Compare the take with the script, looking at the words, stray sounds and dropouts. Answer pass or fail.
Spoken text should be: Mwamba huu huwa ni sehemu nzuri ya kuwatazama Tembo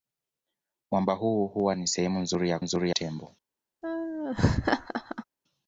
fail